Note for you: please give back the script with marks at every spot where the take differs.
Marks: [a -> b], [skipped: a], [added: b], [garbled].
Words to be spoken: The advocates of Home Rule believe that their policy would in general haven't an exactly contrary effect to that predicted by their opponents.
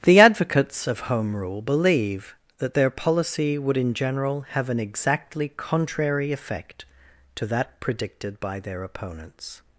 The advocates of Home Rule believe that their policy would in general [haven't -> have] an exactly contrary effect to that predicted by their opponents.